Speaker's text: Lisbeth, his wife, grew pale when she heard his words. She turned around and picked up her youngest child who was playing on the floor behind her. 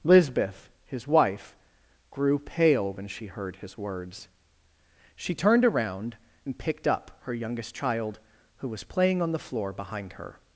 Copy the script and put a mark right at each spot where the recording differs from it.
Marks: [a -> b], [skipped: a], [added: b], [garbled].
Lisbeth, his wife, grew pale when she heard his words. She turned around and picked up her youngest child who was playing on the floor behind her.